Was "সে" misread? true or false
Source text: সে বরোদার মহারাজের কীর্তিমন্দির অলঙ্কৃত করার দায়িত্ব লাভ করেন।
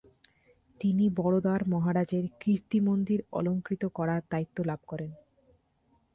true